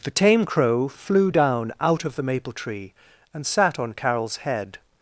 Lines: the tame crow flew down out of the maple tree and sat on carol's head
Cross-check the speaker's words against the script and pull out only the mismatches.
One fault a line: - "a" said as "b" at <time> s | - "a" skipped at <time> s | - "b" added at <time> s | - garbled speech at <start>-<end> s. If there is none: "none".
none